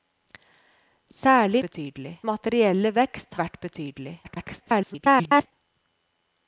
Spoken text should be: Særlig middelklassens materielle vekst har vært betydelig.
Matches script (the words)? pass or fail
fail